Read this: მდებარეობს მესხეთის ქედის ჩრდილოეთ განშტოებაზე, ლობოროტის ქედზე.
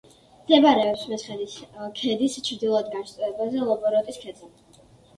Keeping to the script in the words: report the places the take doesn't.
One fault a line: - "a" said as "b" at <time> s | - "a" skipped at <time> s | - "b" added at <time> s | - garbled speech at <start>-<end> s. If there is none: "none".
none